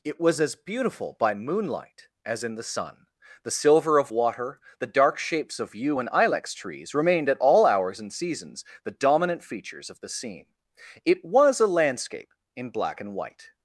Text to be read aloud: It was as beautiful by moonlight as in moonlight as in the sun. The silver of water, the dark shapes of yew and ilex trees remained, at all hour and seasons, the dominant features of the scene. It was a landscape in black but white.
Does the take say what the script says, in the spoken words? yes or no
no